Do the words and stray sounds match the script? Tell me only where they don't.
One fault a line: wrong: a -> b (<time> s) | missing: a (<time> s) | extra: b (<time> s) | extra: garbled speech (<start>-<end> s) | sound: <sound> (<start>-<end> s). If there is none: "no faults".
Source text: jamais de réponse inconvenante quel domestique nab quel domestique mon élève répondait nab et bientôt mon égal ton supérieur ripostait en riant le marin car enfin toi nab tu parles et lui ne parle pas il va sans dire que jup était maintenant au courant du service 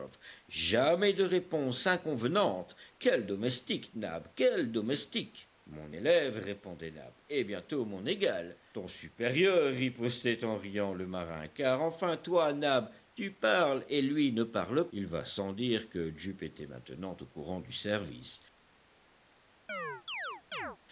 missing: pas (14.9 s)
sound: chirp (19.7-20.8 s)